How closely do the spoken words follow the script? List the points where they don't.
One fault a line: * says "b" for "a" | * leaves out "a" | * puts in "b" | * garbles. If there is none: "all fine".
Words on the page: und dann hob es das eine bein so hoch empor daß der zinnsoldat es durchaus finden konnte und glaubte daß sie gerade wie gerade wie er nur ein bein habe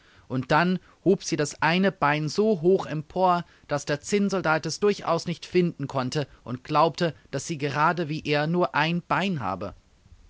* says "sie" for "es"
* puts in "nicht"
* leaves out "gerade wie"